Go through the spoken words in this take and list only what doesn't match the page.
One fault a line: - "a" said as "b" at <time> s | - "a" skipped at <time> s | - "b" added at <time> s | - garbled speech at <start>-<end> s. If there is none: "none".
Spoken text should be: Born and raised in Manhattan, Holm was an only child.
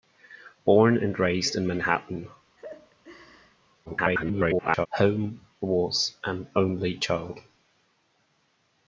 - garbled speech at 3.9-4.9 s